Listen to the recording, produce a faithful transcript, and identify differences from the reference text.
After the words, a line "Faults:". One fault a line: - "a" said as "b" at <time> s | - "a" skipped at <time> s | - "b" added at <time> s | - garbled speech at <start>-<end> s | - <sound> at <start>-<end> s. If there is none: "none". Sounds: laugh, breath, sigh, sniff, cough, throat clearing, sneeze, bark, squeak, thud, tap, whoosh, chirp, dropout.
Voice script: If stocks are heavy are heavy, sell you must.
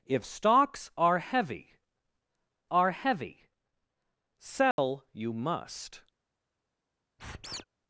If stocks are heavy are heavy, sell you must.
Faults:
- dropout at 4.7-4.8 s
- squeak at 7.2-7.6 s